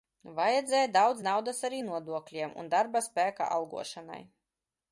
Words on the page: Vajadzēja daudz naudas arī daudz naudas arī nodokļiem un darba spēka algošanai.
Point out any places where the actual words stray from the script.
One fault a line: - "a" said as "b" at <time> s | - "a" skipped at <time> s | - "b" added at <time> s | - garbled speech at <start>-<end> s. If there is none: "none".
- "daudz naudas arī" skipped at 1.8 s